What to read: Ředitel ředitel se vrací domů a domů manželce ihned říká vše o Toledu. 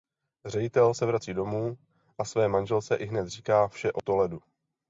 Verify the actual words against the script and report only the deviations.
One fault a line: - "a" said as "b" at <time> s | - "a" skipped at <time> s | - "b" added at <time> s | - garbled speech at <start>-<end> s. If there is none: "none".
- "ředitel" skipped at 0.9 s
- "domů" said as "své" at 2.2 s